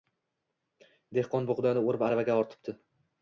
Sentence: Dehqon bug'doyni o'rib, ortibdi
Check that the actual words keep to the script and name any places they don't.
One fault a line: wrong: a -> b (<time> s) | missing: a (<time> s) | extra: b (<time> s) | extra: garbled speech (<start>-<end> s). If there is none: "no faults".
extra: aravaga (2.1 s)